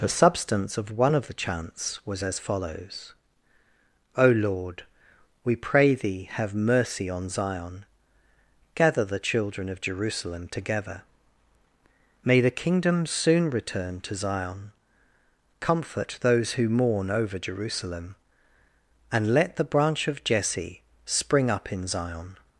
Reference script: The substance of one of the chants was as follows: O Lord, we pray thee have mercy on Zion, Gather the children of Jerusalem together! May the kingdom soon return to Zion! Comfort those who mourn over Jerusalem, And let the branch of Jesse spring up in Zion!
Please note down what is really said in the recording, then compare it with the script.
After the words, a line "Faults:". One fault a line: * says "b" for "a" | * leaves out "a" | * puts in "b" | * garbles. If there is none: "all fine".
The substance of one of the chants was as follows: O Lord, we pray thee have mercy on Zion, Gather the children of Jerusalem together! May the kingdom soon return to Zion! Comfort those who mourn over Jerusalem, And let the branch of Jesse spring up in Zion!
Faults:
all fine